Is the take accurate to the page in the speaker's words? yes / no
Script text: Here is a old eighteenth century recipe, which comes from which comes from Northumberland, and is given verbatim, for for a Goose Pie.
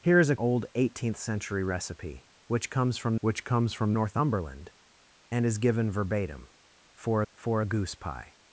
yes